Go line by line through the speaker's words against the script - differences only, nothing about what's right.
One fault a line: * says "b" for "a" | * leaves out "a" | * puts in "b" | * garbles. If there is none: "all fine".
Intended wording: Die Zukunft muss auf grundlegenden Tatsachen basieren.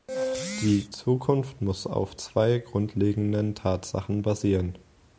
* puts in "zwei"